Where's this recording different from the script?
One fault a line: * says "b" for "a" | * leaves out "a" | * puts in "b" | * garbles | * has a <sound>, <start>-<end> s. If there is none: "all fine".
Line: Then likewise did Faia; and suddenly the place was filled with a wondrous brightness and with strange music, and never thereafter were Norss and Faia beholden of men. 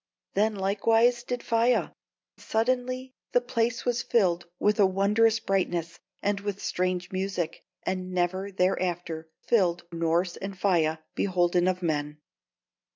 * leaves out "and"
* says "filled" for "were"